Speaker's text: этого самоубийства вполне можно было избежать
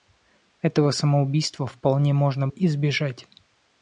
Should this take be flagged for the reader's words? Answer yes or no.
yes